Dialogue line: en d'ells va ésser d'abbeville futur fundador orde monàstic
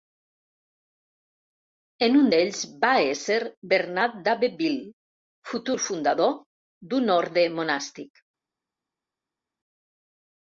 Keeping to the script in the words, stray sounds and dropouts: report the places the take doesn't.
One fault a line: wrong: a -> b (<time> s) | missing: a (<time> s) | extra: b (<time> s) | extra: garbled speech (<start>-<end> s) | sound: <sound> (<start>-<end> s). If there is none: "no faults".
extra: un (2.2 s)
extra: bernat (3.7 s)
extra: d'un (6.9 s)